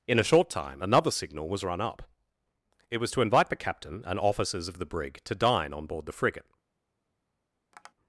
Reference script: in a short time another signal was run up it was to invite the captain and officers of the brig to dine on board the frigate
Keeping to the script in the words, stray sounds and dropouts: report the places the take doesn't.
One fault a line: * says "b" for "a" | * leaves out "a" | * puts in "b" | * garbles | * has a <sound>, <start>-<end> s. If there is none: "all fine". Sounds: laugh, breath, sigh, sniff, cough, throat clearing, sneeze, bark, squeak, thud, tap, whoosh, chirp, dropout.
* has a tap, 7.7-7.9 s